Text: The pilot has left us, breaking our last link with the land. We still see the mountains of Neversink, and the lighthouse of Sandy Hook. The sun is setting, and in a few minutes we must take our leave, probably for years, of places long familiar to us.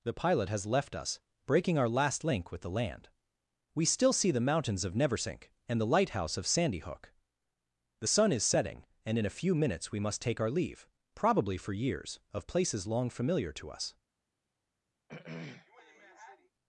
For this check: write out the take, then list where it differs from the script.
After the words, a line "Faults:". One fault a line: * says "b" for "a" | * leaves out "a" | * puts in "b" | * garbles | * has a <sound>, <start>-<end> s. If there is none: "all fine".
The pilot has left us, breaking our last link with the land. We still see the mountains of Neversink, and the lighthouse of Sandy Hook. The sun is setting, and in a few minutes we must take our leave, probably for years, of places long familiar to us.
Faults:
* has a throat clearing, 15.1-16.5 s